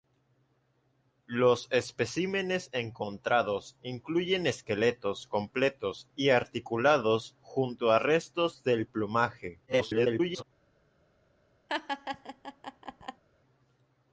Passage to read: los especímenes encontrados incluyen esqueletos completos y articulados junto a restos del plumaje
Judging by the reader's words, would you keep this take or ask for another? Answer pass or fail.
fail